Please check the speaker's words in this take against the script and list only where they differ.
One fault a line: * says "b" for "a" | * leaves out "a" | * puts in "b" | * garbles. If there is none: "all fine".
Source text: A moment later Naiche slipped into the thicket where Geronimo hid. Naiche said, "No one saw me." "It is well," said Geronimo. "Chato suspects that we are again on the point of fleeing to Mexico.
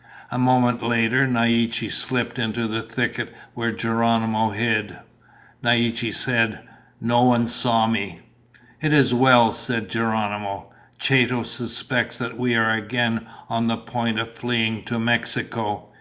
all fine